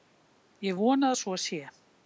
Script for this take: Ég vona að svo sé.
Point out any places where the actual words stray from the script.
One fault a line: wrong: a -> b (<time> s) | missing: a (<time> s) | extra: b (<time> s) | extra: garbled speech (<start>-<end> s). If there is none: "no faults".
no faults